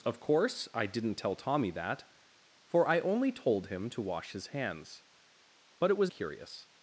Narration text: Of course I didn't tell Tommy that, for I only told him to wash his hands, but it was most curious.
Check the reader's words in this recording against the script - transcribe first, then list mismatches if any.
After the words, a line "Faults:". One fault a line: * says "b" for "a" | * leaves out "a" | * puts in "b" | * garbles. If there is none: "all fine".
Of course I didn't tell Tommy that, for I only told him to wash his hands, but it was curious.
Faults:
* leaves out "most"